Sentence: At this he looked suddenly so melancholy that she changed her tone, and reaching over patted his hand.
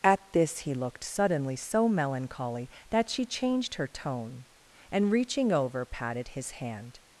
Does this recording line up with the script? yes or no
yes